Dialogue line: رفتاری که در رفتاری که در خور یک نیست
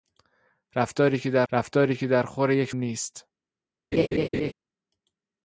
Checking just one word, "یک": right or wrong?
right